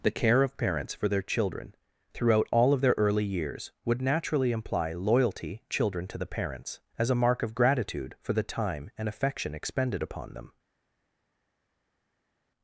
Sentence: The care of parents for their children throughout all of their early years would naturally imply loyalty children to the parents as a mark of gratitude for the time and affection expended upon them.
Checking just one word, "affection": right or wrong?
right